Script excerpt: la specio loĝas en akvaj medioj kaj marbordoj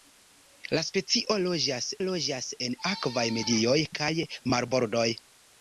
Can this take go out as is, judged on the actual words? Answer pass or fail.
fail